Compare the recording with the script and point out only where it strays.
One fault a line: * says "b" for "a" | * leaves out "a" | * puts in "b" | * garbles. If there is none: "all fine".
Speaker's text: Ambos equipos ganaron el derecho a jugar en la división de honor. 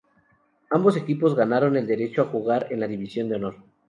all fine